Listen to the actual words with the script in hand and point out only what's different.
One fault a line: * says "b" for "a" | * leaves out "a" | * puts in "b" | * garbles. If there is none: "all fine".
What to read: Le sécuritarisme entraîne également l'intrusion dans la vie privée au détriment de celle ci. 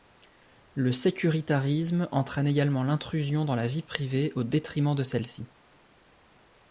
all fine